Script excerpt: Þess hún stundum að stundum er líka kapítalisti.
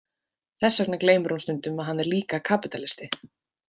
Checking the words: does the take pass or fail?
fail